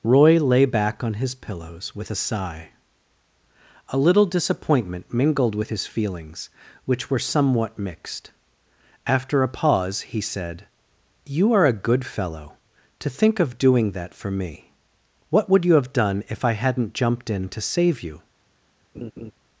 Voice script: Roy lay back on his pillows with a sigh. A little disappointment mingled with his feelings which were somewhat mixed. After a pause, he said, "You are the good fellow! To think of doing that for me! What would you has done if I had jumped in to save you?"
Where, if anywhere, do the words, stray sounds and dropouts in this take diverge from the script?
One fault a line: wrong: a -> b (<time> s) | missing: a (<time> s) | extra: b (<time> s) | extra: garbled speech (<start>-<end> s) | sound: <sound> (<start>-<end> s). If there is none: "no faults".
wrong: the -> a (11.7 s)
wrong: has -> have (15.7 s)
wrong: had -> hadn't (16.5 s)
sound: laugh (18.9-19.3 s)